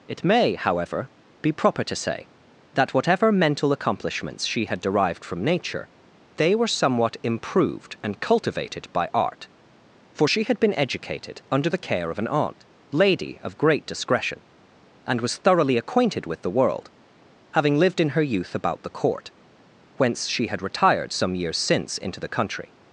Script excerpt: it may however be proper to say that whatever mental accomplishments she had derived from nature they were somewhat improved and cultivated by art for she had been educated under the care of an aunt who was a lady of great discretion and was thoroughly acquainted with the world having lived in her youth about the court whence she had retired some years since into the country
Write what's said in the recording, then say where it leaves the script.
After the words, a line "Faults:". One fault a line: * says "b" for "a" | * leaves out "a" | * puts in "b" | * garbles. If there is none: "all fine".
it may however be proper to say that whatever mental accomplishments she had derived from nature they were somewhat improved and cultivated by art for she had been educated under the care of an aunt lady of great discretion and was thoroughly acquainted with the world having lived in her youth about the court whence she had retired some years since into the country
Faults:
* leaves out "who was a"